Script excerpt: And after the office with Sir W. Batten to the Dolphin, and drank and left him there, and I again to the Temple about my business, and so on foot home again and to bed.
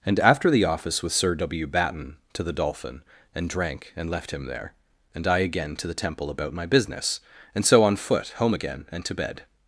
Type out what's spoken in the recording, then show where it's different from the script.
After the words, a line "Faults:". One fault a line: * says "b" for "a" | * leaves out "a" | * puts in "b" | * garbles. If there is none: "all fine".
And after the office with Sir W. Batten to the Dolphin, and drank and left him there, and I again to the Temple about my business, and so on foot home again and to bed.
Faults:
all fine